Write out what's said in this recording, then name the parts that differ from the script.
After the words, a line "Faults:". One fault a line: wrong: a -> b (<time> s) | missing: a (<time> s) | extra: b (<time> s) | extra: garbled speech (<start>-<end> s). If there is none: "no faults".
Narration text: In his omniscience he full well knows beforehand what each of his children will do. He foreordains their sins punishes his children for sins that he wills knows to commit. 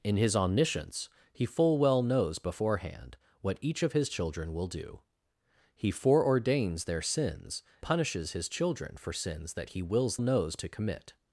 In his omniscience he full well knows beforehand what each of his children will do. He foreordains their sins punishes his children for sins that he wills knows to commit.
Faults:
no faults